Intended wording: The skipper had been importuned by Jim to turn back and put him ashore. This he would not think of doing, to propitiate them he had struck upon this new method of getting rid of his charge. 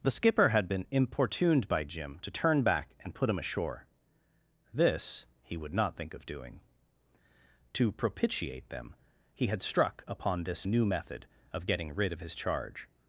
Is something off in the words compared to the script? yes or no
no